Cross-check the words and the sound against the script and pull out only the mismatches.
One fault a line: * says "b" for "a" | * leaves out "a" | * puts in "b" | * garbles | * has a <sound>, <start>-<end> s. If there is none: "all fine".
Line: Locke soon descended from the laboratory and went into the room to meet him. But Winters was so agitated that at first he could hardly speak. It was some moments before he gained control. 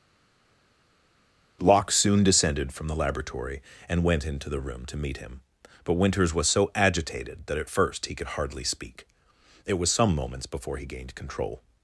all fine